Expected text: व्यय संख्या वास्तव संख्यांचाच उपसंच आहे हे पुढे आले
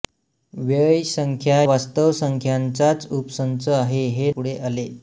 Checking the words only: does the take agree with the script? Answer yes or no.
yes